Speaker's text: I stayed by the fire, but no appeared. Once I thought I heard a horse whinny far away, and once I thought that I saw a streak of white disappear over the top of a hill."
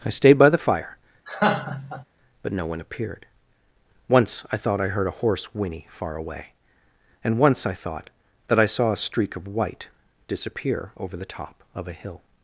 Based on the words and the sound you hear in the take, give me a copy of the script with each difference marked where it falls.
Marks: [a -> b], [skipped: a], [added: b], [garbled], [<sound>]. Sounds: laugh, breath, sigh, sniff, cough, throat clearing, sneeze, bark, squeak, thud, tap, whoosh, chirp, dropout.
I stayed by the fire, [laugh] but no [added: one] appeared. Once I thought I heard a horse whinny far away, and once I thought that I saw a streak of white disappear over the top of a hill."